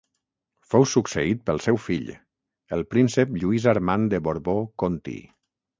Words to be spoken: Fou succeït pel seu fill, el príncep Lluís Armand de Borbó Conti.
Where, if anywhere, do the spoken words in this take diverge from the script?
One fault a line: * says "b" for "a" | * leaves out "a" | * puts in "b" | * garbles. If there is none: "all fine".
all fine